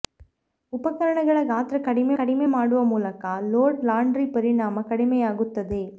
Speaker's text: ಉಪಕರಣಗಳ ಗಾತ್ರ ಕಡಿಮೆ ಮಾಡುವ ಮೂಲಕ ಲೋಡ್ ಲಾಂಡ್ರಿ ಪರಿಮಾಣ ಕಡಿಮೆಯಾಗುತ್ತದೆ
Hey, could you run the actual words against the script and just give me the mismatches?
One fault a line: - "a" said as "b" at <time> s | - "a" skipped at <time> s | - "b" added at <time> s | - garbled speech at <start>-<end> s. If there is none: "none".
- "ಕಡಿಮೆ" added at 2.2 s